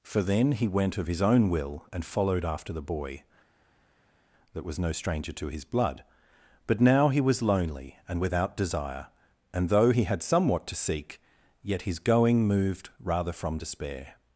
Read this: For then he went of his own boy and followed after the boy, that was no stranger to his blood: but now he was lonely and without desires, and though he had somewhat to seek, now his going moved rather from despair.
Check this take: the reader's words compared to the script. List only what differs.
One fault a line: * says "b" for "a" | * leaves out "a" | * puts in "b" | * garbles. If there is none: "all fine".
* says "will" for "boy"
* says "desire" for "desires"
* says "yet" for "now"